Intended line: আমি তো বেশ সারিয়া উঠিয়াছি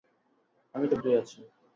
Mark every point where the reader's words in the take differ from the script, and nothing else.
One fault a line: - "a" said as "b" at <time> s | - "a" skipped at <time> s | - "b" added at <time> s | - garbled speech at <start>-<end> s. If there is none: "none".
- "বেশ সারিয়া" skipped at 0.9 s